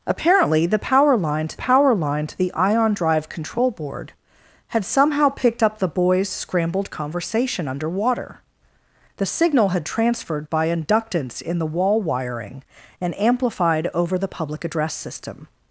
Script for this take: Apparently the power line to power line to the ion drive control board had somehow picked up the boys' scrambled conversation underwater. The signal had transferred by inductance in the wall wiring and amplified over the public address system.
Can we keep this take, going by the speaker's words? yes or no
yes